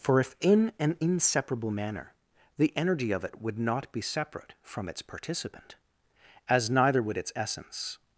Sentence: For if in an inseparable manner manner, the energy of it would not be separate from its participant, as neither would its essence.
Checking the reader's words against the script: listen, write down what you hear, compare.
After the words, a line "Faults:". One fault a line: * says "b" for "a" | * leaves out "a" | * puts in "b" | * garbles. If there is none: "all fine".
For if in an inseparable manner, the energy of it would not be separate from its participant, as neither would its essence.
Faults:
* leaves out "manner"